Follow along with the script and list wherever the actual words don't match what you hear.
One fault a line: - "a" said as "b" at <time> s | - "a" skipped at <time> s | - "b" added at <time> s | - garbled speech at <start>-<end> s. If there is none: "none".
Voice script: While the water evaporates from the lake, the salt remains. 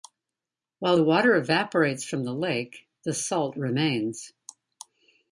none